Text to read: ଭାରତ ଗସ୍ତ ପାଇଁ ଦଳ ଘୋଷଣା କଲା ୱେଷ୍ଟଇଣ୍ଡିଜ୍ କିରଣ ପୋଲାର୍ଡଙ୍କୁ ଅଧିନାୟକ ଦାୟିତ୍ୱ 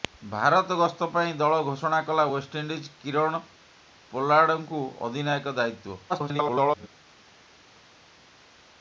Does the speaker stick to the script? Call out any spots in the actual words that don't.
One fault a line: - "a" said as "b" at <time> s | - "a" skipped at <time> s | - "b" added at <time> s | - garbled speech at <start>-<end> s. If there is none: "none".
- garbled speech at 6.1-6.9 s